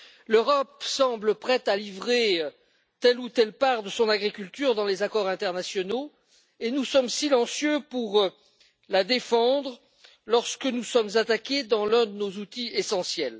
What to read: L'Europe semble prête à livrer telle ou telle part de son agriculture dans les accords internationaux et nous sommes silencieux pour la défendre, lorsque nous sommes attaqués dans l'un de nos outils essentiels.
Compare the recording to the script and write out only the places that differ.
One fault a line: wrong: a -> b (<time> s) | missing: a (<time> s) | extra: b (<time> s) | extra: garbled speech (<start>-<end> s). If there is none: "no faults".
no faults